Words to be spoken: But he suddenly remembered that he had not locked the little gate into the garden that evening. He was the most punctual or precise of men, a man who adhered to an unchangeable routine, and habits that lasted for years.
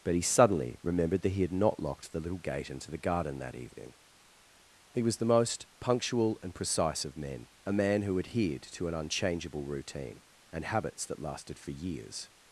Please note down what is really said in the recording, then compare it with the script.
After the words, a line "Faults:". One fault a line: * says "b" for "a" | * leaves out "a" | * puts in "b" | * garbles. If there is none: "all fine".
But he suddenly remembered that he had not locked the little gate into the garden that evening. He was the most punctual and precise of men, a man who adhered to an unchangeable routine, and habits that lasted for years.
Faults:
* says "and" for "or"